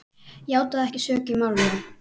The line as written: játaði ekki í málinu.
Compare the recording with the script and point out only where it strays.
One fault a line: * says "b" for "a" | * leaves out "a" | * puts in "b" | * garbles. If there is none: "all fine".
* puts in "sök"